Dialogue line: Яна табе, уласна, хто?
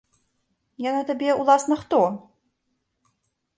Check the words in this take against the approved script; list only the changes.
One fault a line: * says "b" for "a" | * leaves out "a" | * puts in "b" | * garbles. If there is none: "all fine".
all fine